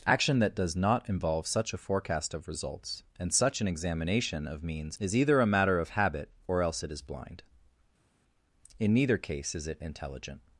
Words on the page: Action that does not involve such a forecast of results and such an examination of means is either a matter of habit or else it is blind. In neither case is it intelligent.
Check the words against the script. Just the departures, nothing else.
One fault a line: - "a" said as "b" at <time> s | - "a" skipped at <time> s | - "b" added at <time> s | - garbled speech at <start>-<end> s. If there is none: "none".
none